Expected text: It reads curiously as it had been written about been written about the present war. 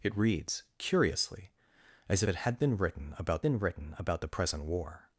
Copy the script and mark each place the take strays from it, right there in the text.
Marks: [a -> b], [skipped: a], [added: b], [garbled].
It reads curiously as it had been written about been written about the present war.